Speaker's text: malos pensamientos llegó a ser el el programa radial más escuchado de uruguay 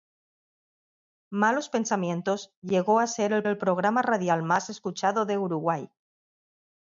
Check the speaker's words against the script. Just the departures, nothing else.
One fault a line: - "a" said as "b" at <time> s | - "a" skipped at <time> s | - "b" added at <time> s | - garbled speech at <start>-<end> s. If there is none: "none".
none